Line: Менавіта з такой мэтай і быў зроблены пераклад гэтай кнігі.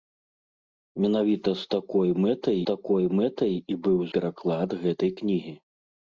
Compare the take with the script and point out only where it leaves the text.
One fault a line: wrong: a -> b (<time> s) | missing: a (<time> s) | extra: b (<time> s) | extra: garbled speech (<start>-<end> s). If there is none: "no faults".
extra: такой мэтай (2.7 s)
missing: зроблены (4.0 s)